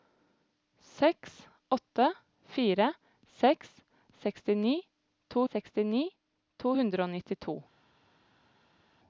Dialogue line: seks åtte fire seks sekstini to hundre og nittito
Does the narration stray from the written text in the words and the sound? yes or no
yes